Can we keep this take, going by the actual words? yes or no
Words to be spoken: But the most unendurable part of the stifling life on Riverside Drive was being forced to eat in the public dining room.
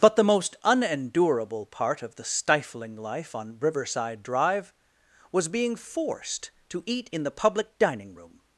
yes